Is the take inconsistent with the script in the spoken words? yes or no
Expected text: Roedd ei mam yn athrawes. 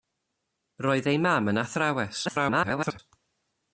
yes